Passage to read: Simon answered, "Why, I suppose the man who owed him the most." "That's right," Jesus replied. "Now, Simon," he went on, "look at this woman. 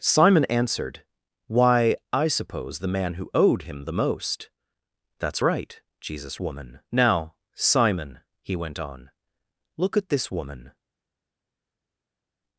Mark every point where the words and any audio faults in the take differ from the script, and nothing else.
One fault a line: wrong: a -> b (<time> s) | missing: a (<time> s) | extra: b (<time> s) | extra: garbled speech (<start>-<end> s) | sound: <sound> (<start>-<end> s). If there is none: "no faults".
wrong: replied -> woman (6.4 s)